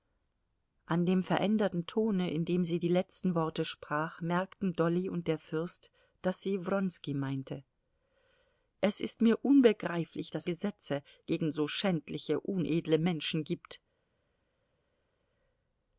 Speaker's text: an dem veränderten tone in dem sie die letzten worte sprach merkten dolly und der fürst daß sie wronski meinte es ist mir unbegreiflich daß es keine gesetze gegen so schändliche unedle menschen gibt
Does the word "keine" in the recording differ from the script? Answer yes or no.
yes